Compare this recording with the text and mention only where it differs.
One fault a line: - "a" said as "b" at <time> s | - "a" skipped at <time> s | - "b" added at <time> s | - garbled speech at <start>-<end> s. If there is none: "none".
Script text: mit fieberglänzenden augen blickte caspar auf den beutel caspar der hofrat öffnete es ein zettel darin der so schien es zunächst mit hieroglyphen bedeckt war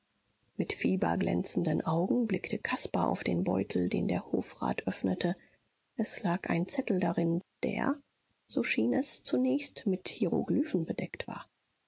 - "caspar" said as "den" at 3.9 s
- "lag" added at 6.2 s